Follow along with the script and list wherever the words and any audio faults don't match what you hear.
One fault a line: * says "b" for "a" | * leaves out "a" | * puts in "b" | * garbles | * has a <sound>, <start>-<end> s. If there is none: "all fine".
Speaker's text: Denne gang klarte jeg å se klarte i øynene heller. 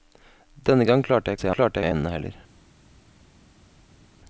all fine